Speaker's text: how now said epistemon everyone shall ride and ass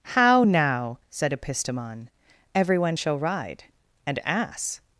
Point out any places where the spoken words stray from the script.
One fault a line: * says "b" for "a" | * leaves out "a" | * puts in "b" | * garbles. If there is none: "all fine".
all fine